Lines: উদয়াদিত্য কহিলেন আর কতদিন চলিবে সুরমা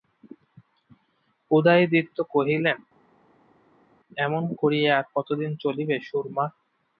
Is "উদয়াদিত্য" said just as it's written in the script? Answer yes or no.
yes